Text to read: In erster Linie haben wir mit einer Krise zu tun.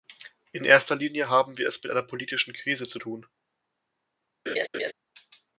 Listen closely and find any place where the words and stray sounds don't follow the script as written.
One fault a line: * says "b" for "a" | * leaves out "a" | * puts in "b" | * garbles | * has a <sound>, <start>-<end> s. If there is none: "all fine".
* puts in "es"
* puts in "politischen"
* has a laugh, 4.5-4.9 s